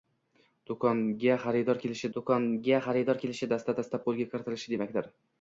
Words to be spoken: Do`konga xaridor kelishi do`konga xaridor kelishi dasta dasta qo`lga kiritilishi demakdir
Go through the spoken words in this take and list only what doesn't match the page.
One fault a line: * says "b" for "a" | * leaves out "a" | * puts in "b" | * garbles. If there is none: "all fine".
all fine